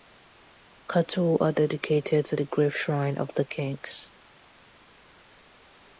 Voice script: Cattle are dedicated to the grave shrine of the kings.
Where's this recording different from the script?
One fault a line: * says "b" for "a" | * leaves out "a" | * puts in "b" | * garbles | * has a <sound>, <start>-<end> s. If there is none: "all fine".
all fine